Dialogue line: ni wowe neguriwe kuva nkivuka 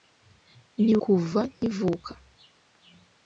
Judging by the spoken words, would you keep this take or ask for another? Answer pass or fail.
fail